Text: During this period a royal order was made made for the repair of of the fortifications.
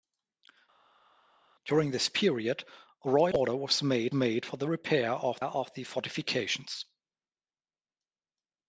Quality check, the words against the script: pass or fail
pass